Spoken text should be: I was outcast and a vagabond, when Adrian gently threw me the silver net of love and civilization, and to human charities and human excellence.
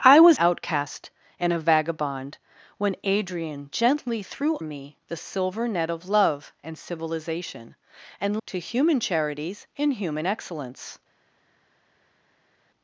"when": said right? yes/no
yes